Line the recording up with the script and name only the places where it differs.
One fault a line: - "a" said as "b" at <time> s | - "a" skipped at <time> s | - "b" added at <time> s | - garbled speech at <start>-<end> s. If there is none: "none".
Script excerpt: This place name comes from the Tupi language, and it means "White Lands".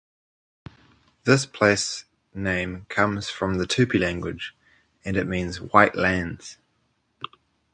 none